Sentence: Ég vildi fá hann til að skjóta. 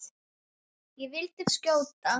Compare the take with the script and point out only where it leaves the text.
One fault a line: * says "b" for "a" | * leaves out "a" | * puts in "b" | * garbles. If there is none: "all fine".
* leaves out "fá hann til"